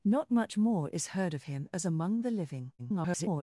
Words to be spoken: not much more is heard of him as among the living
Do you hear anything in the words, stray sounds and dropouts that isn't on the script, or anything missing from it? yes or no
yes